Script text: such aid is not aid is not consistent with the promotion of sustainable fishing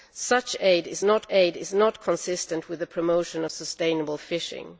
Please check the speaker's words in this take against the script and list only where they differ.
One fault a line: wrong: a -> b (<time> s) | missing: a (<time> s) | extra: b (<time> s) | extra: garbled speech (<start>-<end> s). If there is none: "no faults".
no faults